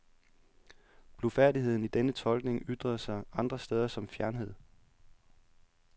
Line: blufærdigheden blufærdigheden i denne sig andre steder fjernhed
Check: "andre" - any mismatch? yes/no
no